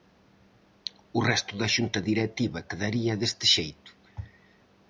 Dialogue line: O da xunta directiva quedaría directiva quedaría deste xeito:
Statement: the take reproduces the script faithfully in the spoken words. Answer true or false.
false